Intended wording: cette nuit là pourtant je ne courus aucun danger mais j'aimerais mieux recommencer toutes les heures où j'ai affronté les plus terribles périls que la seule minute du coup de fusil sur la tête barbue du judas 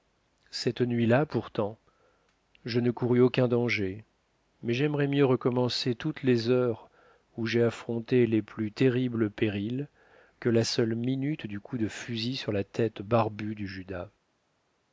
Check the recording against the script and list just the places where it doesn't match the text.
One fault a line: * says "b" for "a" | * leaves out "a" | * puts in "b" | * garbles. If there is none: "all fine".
all fine